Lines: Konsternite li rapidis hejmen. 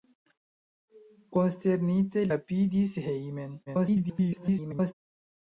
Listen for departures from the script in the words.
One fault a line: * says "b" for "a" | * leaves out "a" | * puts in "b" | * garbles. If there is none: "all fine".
* leaves out "li"
* garbles